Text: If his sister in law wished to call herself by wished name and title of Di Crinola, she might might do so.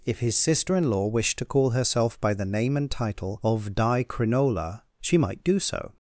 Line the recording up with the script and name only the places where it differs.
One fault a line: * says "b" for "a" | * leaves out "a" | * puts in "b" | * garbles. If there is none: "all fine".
* says "the" for "wished"
* leaves out "might"